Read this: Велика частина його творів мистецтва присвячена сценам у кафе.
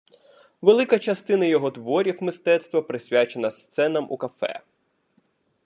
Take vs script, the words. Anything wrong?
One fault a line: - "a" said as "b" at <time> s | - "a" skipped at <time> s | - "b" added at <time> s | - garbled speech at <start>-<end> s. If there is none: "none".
none